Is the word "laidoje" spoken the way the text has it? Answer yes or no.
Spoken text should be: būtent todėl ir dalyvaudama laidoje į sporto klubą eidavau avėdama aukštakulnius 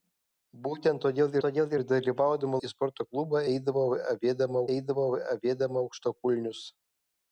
no